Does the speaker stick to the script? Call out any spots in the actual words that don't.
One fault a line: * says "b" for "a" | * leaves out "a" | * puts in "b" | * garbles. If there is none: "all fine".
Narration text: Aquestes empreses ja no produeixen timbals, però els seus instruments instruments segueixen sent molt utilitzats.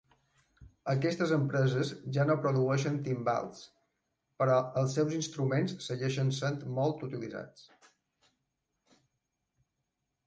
* leaves out "instruments"